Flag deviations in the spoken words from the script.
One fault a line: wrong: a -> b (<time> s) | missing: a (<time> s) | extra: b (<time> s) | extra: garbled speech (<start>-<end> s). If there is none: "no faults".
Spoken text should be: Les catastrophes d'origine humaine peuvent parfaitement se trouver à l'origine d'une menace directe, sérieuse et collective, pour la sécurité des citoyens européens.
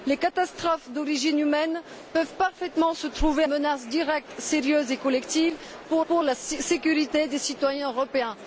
missing: à l'origine d'une (3.4 s)
extra: pour (6.1 s)